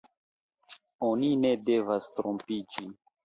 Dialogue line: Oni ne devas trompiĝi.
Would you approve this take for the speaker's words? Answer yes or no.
yes